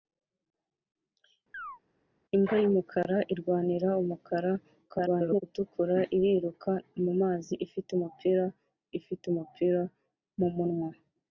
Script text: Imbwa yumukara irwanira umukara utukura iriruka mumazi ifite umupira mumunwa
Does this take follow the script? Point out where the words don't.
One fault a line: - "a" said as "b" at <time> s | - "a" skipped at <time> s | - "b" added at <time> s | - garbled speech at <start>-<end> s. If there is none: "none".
- garbled speech at 4.9-5.4 s
- "ifite umupira" added at 9.0 s